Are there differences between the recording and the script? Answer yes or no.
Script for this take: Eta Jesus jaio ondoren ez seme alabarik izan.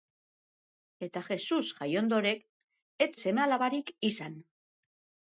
no